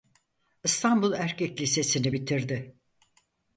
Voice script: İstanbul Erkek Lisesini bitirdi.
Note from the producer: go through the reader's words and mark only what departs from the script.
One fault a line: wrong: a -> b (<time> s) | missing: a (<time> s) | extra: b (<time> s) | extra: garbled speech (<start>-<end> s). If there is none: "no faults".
no faults